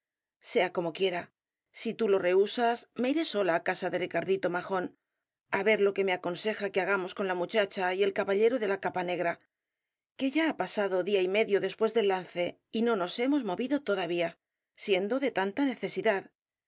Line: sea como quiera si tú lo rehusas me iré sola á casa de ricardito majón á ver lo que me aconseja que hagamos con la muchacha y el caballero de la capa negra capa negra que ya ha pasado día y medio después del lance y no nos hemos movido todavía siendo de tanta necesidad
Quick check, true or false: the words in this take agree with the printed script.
false